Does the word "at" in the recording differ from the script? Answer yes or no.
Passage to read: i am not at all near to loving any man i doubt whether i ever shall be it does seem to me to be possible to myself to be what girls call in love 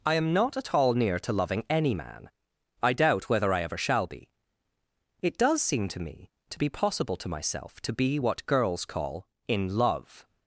no